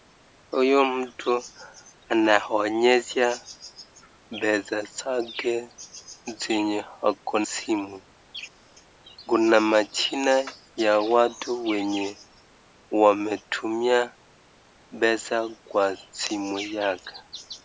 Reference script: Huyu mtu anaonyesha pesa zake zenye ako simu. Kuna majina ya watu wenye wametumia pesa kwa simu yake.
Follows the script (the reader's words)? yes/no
yes